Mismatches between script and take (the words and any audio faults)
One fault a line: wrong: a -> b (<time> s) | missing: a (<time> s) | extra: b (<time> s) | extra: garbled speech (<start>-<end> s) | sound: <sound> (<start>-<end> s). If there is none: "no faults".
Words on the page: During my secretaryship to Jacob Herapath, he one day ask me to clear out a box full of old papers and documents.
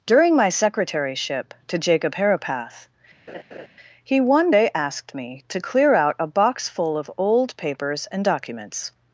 sound: laugh (3.3-3.7 s)
wrong: ask -> asked (4.7 s)